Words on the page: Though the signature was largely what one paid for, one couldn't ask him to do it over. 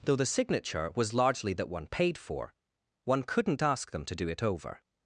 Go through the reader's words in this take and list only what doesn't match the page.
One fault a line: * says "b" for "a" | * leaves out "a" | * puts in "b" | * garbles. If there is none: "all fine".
* says "that" for "what"
* says "them" for "him"